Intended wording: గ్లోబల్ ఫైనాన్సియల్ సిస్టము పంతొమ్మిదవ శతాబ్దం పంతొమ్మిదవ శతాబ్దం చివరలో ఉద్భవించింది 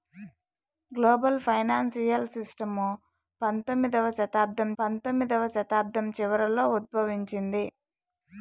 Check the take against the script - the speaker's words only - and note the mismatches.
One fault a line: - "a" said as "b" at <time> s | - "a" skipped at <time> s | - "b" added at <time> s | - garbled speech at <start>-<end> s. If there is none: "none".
none